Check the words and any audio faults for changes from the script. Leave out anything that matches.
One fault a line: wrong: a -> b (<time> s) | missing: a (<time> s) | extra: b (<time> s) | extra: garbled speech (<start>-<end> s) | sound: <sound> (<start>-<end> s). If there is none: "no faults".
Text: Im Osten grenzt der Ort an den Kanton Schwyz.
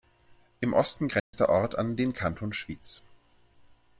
sound: dropout (1.2-1.3 s)